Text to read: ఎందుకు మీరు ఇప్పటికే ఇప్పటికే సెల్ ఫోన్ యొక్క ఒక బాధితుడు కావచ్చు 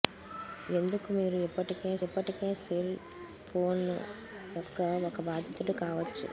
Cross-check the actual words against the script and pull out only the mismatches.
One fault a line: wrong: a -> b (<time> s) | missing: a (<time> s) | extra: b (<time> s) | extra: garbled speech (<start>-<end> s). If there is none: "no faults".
no faults